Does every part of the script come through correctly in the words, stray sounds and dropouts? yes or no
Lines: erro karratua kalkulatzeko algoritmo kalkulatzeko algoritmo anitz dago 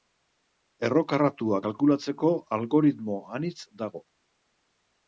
no